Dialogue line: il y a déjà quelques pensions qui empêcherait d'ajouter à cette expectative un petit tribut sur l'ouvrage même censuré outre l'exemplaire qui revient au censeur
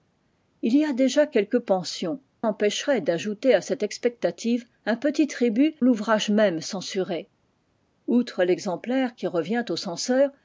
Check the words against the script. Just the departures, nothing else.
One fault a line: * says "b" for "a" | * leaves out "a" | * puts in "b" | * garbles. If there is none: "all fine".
* leaves out "qui"
* leaves out "sur"